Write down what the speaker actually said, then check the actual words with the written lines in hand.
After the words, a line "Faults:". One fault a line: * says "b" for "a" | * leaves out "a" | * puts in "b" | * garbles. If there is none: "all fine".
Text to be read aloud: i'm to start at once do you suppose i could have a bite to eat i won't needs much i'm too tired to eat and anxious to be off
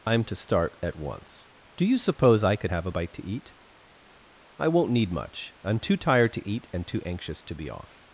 i'm to start at once do you suppose i could have a bite to eat i won't need much i'm too tired to eat and too anxious to be off
Faults:
* says "need" for "needs"
* puts in "too"